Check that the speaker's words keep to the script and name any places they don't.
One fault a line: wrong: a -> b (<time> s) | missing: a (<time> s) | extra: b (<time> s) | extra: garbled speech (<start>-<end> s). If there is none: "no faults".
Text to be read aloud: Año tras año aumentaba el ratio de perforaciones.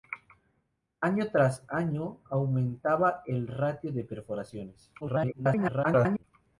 extra: garbled speech (5.0-6.2 s)